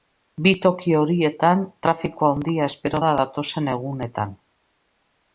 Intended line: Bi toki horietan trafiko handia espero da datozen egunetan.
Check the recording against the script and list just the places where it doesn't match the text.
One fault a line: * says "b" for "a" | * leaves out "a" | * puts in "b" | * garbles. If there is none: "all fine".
all fine